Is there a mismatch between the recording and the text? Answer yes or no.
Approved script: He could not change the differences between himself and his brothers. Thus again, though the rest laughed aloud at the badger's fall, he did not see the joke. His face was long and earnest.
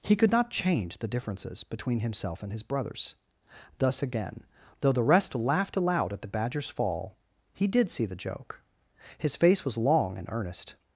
yes